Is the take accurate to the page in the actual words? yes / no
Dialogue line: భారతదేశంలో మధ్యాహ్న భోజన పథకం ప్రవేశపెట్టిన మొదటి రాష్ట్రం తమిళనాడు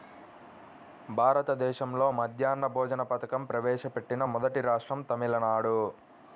yes